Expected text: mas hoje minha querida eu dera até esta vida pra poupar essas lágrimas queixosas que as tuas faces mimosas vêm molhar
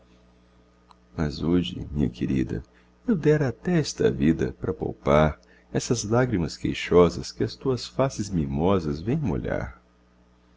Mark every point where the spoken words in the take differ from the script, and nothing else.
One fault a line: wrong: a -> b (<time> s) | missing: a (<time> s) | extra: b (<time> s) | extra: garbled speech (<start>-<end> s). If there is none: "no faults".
no faults